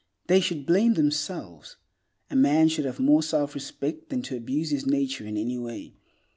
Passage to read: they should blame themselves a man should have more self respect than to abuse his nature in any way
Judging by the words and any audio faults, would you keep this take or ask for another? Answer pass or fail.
pass